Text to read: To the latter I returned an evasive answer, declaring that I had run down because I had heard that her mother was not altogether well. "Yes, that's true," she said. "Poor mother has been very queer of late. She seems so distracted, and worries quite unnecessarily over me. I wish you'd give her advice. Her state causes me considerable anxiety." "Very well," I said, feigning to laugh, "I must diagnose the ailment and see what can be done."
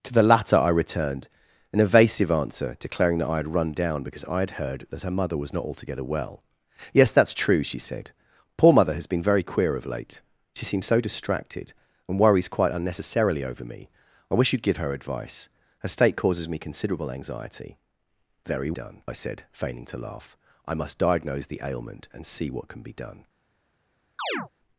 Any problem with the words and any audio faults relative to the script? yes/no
yes